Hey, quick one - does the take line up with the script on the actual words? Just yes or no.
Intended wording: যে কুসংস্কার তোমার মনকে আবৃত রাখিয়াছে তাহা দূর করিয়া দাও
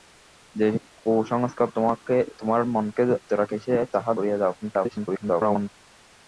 no